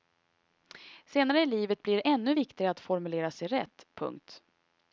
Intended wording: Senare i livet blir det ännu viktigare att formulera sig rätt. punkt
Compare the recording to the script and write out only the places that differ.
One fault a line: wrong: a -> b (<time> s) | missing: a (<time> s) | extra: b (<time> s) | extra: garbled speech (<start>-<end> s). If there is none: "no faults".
no faults